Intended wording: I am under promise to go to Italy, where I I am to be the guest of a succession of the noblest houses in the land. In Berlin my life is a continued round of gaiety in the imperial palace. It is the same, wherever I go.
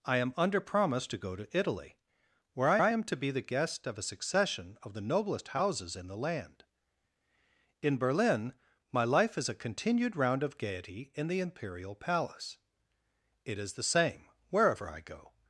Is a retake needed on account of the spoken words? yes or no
no